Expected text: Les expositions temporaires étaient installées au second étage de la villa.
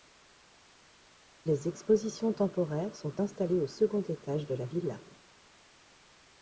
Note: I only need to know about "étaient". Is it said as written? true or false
false